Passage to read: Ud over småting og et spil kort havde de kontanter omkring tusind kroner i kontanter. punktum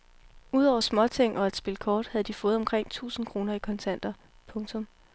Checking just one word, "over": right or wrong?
right